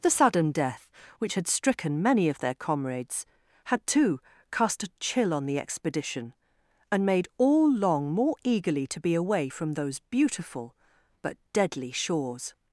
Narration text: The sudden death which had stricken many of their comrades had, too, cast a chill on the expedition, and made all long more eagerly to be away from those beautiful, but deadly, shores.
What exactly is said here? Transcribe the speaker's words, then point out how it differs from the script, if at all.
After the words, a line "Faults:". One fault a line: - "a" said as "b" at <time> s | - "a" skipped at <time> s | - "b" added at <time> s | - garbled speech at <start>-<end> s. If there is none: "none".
The sudden death which had stricken many of their comrades had, too, cast a chill on the expedition, and made all long more eagerly to be away from those beautiful, but deadly, shores.
Faults:
none